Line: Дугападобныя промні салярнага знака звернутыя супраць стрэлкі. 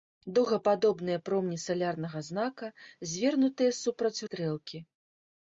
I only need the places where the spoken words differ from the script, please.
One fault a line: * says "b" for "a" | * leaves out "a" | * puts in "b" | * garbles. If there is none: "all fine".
all fine